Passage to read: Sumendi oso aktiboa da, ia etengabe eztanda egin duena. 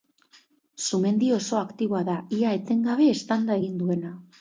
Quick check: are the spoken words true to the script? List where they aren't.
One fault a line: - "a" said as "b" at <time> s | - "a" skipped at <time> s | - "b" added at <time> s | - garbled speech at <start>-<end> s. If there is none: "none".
none